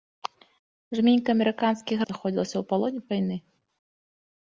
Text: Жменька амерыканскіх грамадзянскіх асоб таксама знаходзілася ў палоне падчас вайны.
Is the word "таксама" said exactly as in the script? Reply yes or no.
no